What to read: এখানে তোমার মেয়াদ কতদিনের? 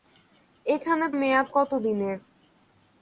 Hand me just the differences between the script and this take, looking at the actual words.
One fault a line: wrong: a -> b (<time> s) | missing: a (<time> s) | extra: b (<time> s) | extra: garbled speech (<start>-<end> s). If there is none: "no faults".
missing: তোমার (1.1 s)